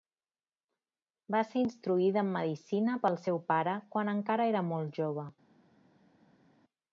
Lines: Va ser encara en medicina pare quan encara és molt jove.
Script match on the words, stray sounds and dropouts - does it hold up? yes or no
no